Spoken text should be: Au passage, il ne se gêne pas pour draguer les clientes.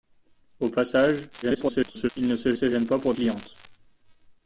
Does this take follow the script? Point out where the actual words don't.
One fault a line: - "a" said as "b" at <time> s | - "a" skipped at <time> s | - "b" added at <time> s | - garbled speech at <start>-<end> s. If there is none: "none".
- garbled speech at 1.4-2.1 s
- "se" added at 2.5 s
- "draguer les" skipped at 3.1 s